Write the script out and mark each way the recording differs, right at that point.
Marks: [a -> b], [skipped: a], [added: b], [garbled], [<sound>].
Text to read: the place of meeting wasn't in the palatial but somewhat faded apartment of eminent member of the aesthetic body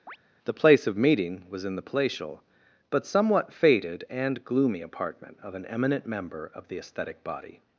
[chirp] the place of meeting [wasn't -> was] in the palatial but somewhat faded [added: and gloomy] apartment of [added: an] eminent member of the aesthetic body